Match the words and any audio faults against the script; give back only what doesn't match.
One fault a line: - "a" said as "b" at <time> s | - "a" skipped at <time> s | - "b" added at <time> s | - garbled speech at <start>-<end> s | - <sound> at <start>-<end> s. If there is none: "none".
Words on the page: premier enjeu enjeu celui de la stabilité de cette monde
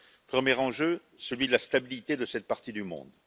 - "enjeu" skipped at 1.0 s
- "partie du" added at 2.5 s